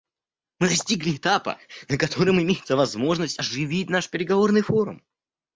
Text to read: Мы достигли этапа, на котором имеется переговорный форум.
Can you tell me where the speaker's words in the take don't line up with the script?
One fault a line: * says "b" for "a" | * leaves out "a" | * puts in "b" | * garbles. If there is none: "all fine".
* puts in "возможность оживить наш"